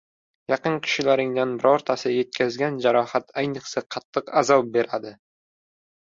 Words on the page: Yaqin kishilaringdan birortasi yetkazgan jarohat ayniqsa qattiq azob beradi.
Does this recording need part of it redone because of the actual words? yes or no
no